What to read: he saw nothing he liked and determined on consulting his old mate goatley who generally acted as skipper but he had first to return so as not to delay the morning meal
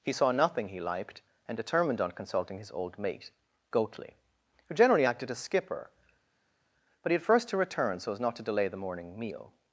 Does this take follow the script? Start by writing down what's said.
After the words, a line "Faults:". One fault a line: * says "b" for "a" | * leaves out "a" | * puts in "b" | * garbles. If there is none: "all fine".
he saw nothing he liked and determined on consulting his old mate goatley who generally acted as skipper but he had first to return so as not to delay the morning meal
Faults:
all fine